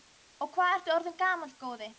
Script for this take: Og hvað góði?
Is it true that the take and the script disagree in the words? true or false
true